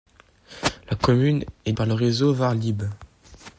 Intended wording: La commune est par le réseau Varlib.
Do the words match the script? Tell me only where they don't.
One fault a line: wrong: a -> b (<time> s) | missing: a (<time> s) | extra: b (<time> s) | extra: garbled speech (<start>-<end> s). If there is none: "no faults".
no faults